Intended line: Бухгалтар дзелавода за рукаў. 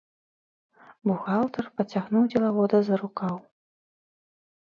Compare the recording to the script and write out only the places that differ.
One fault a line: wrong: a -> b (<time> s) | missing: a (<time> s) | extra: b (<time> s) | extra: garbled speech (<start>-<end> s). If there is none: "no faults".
extra: пацягнуў (1.8 s)